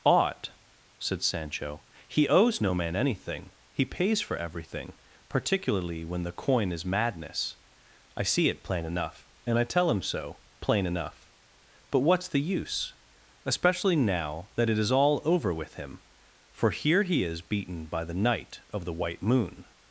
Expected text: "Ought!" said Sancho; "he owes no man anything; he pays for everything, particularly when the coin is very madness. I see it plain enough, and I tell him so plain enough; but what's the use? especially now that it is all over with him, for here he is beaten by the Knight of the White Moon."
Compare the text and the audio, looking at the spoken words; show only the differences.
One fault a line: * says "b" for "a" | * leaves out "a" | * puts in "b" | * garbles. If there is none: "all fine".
* leaves out "very"